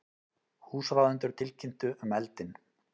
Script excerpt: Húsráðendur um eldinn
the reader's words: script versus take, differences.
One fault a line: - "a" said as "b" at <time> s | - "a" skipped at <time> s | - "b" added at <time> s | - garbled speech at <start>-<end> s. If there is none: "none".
- "tilkynntu" added at 1.4 s